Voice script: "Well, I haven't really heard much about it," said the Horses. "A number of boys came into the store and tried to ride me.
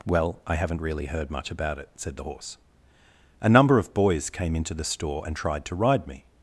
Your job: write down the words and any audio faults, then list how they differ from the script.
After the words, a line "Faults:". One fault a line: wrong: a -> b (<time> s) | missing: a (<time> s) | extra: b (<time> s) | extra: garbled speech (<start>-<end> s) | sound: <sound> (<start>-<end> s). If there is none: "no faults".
"Well, I haven't really heard much about it," said the Horse. "A number of boys came into the store and tried to ride me.
Faults:
wrong: Horses -> Horse (2.2 s)